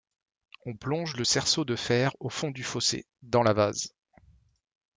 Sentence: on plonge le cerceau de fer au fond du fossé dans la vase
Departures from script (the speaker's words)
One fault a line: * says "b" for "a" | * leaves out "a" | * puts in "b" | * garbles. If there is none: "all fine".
all fine